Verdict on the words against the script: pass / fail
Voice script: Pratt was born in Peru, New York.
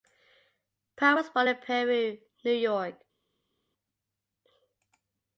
pass